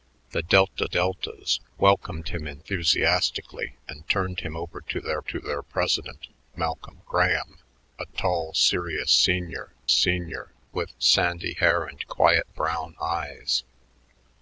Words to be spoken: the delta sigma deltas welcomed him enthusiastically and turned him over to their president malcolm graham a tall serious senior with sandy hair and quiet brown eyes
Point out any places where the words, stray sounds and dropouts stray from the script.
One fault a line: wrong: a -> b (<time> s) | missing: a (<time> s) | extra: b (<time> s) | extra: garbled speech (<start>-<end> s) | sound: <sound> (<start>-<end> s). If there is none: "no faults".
missing: sigma (0.9 s)
extra: to their (5.2 s)
extra: senior (9.9 s)